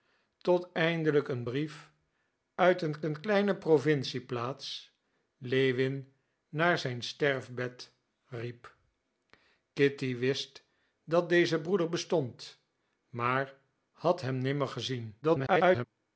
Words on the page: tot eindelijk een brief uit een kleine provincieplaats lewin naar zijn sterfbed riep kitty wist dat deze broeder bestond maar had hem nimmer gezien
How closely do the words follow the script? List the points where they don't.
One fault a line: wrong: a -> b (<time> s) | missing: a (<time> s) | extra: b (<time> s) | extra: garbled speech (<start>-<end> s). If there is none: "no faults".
extra: een (3.0 s)
extra: garbled speech (15.2-15.8 s)